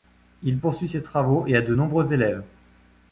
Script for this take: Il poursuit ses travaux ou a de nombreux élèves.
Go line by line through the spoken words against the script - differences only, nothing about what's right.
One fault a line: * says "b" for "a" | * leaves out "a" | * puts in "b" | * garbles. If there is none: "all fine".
* says "et" for "ou"